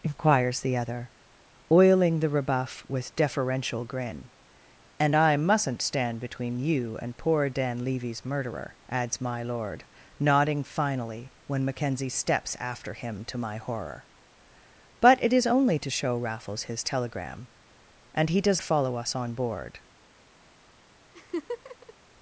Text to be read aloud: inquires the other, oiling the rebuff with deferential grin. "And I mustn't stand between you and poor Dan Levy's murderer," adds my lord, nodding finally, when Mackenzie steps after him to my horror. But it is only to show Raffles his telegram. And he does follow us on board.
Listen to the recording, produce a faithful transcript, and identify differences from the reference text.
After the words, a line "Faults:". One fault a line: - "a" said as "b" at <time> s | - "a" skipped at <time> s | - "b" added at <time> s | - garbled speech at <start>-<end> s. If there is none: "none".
inquires the other, oiling the rebuff with deferential grin. "And I mustn't stand between you and poor Dan Levy's murderer," adds my lord, nodding finally, when Mackenzie steps after him to my horror. But it is only to show Raffles his telegram. And he does follow us on board.
Faults:
none